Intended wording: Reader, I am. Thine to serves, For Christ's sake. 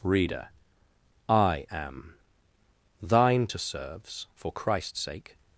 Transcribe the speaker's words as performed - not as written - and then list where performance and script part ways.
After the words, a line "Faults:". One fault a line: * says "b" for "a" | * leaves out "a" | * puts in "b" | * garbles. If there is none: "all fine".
Reader, I am. Thine to serves, For Christ's sake.
Faults:
all fine